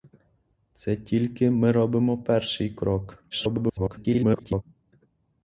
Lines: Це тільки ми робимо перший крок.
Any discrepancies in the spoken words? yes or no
yes